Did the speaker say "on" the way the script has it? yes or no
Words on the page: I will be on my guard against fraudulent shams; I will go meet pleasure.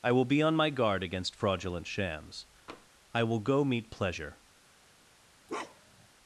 yes